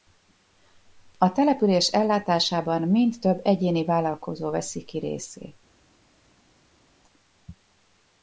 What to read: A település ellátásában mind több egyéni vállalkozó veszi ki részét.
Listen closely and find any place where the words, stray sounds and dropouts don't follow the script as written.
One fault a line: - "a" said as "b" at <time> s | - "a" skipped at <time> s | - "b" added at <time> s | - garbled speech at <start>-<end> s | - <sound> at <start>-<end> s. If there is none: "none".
none